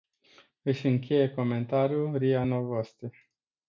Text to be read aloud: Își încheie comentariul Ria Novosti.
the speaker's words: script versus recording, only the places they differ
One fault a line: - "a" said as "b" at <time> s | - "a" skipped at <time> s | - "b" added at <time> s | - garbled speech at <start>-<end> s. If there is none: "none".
none